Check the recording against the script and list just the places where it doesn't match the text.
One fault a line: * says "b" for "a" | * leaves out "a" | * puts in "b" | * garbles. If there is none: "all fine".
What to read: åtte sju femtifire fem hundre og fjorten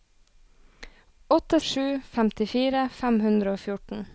all fine